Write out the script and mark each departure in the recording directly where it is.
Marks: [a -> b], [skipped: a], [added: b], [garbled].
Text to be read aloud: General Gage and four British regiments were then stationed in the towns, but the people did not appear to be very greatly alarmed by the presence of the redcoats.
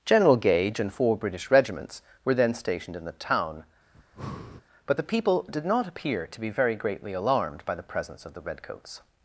General Gage and four British regiments were then stationed in the [towns, -> town] but the people did not appear to be very greatly alarmed by the presence of the redcoats.